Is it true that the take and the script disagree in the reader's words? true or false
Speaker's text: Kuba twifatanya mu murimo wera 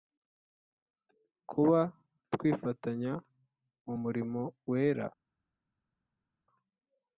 false